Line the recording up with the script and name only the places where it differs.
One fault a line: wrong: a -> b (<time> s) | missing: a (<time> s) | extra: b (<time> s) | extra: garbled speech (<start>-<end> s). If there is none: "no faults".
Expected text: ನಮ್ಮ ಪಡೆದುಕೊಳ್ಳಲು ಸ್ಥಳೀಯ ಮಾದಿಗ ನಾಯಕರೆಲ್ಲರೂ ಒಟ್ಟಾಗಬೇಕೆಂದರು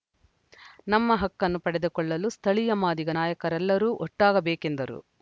extra: ಹಕ್ಕನ್ನು (1.1 s)